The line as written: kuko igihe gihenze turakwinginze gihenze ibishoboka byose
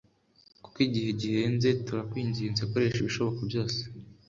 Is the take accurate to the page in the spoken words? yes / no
no